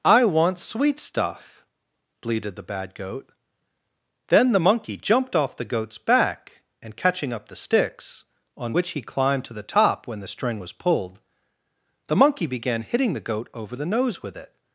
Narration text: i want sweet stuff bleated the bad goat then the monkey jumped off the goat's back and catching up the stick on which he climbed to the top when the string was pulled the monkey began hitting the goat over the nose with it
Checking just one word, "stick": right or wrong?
wrong